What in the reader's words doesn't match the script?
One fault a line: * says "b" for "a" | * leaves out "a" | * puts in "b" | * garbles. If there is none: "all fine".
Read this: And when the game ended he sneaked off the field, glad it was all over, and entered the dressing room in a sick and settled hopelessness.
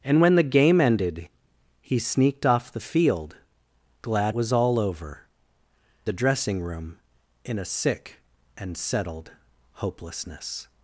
* leaves out "it"
* leaves out "and entered"